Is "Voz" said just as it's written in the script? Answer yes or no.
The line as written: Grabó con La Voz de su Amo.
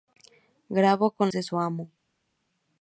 no